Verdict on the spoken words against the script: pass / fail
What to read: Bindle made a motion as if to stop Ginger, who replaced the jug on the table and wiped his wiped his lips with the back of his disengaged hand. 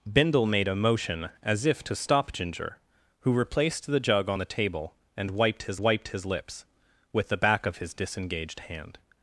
pass